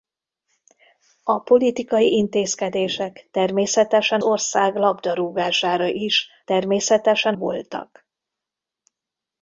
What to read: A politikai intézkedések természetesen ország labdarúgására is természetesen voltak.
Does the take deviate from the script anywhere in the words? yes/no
no